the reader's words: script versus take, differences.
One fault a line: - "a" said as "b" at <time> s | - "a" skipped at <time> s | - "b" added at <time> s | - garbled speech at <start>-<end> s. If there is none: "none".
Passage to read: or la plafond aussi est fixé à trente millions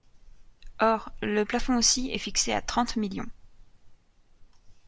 - "la" said as "le" at 1.2 s